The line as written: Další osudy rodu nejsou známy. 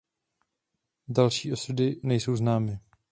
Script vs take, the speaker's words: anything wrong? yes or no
yes